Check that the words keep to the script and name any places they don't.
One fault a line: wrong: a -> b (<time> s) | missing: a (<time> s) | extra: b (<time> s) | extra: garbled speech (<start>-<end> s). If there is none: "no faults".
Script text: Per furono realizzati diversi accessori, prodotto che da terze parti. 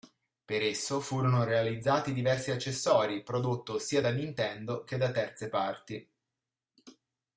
extra: esso (0.6 s)
extra: sia da Nintendo (3.8 s)